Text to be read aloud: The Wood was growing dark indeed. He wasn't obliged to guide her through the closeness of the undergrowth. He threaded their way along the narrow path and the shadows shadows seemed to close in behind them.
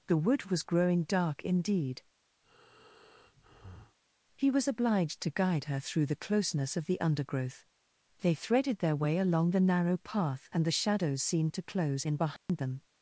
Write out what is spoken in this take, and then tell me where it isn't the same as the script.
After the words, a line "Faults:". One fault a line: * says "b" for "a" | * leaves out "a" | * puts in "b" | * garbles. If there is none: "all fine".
The Wood was growing dark indeed. He was obliged to guide her through the closeness of the undergrowth. They threaded their way along the narrow path and the shadows seemed to close in behind them.
Faults:
* says "was" for "wasn't"
* says "They" for "He"
* leaves out "shadows"